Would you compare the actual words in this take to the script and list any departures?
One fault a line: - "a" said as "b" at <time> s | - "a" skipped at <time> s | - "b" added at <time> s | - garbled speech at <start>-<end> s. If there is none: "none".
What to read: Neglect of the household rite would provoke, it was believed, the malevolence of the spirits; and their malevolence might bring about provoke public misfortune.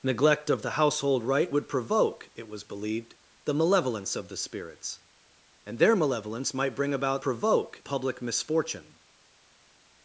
none